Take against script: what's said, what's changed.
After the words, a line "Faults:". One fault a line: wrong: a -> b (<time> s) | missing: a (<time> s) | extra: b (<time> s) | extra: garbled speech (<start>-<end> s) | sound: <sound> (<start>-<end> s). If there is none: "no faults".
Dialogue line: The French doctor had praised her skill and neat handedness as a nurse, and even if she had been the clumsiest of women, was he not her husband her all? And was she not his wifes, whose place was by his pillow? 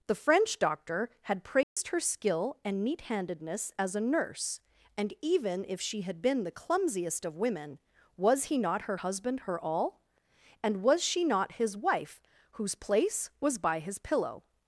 The French doctor had praised her skill and neat handedness as a nurse, and even if she had been the clumsiest of women, was he not her husband her all? And was she not his wife, whose place was by his pillow?
Faults:
sound: dropout (1.6-1.8 s)
wrong: wifes -> wife (11.8 s)